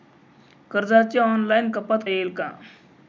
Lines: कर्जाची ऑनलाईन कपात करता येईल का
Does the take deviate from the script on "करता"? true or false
true